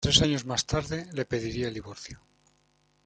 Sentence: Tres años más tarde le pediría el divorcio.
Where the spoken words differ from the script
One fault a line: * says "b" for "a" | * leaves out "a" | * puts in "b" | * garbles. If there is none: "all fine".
all fine